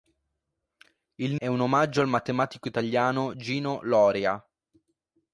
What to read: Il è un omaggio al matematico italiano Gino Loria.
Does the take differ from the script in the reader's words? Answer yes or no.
no